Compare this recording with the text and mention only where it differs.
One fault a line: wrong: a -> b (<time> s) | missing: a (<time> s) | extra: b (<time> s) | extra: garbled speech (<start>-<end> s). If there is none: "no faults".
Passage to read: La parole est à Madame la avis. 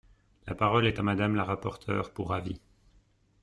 extra: rapporteure pour (1.4 s)